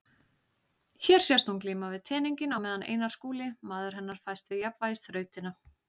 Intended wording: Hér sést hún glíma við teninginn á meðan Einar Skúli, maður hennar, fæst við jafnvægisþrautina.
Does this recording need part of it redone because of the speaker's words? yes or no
no